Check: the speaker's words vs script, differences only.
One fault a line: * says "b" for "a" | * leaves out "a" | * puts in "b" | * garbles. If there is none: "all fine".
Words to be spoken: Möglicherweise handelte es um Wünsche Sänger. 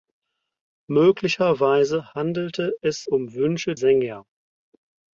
all fine